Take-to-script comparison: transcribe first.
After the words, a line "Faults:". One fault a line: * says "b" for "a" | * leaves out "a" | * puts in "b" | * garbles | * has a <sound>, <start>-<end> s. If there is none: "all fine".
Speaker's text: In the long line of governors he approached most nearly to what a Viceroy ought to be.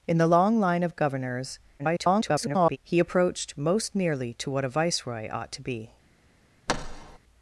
In the long line of governors [garbled] he approached most nearly to what a Viceroy ought to be.
Faults:
* garbles
* has a thud, 6.7-7.2 s